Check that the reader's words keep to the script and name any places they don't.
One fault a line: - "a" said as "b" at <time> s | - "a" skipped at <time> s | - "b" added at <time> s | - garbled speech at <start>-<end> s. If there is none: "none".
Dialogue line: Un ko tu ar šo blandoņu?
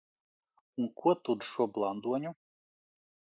none